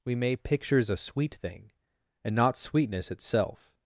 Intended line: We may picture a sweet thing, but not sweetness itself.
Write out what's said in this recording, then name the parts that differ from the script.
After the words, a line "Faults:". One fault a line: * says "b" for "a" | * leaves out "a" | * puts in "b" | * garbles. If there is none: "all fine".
We may pictures a sweet thing, and not sweetness itself.
Faults:
* says "pictures" for "picture"
* says "and" for "but"